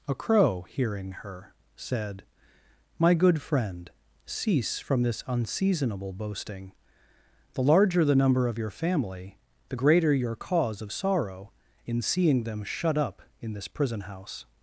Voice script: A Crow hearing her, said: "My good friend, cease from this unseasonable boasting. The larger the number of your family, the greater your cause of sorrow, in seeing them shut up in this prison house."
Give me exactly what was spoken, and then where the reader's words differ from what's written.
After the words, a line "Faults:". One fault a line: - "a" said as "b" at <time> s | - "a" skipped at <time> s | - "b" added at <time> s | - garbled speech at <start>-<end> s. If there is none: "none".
A Crow hearing her, said: "My good friend, cease from this unseasonable boasting. The larger the number of your family, the greater your cause of sorrow, in seeing them shut up in this prison house."
Faults:
none